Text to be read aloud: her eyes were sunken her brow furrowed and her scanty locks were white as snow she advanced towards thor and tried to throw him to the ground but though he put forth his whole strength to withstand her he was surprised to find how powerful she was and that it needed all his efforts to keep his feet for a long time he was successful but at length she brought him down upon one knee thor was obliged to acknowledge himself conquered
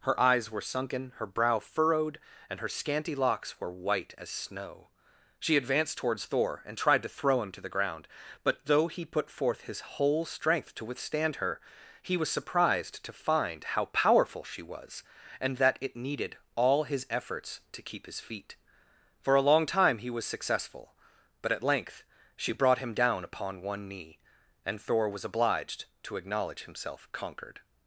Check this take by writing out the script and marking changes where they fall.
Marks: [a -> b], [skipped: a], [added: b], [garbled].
her eyes were sunken her brow furrowed and her scanty locks were white as snow she advanced towards thor and tried to throw him to the ground but though he put forth his whole strength to withstand her he was surprised to find how powerful she was and that it needed all his efforts to keep his feet for a long time he was successful but at length she brought him down upon one knee [added: and] thor was obliged to acknowledge himself conquered